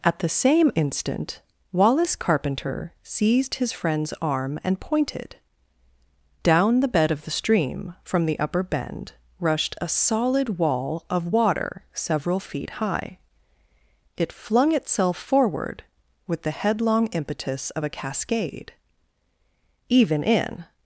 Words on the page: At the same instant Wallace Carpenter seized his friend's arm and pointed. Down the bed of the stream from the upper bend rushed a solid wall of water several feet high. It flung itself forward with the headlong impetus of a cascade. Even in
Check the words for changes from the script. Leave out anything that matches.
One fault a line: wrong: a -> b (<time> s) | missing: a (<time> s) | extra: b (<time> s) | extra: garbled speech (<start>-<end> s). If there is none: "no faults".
no faults